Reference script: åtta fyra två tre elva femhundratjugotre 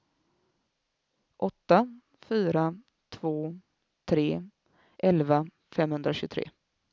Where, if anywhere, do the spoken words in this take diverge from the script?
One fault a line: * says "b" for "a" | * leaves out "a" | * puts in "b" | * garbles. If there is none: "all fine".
all fine